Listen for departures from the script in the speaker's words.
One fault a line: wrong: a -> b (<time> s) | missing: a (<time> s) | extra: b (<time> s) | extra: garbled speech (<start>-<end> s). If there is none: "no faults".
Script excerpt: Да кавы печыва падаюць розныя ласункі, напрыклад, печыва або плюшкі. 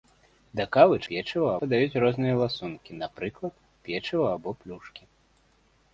no faults